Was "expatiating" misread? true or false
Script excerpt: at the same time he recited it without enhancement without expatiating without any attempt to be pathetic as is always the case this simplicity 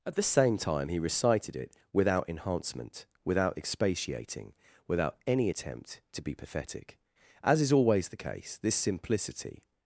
false